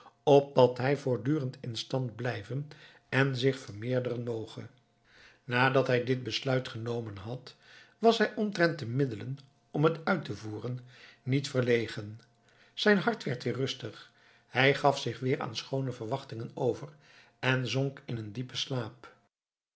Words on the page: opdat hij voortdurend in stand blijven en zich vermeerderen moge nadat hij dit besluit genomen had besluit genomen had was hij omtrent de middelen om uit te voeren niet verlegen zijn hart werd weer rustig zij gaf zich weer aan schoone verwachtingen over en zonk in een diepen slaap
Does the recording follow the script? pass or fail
fail